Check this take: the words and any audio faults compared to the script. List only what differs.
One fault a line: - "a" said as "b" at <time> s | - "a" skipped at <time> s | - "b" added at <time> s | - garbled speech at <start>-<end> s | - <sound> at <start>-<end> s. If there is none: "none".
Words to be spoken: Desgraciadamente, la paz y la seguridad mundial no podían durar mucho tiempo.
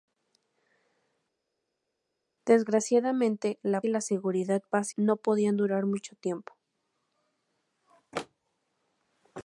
- "paz" skipped at 3.8 s
- "mundial" said as "paz" at 4.6 s